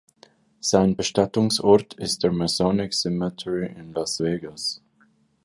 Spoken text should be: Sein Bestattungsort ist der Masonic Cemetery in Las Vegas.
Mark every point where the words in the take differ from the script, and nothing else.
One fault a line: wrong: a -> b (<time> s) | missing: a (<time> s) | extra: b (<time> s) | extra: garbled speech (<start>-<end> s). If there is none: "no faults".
no faults